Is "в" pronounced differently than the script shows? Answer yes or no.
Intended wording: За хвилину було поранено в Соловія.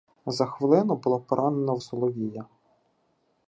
no